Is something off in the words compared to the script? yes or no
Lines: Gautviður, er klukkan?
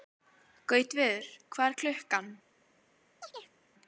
yes